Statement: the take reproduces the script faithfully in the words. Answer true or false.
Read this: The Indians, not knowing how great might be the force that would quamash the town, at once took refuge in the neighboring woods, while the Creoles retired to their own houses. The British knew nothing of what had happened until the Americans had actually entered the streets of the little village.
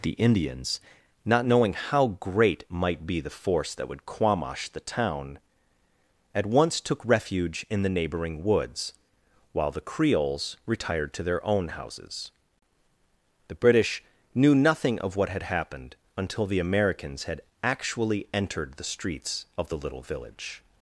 true